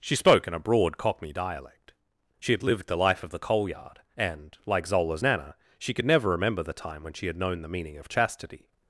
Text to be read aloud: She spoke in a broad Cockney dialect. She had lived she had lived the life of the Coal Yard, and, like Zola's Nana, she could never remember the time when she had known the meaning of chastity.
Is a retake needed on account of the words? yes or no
yes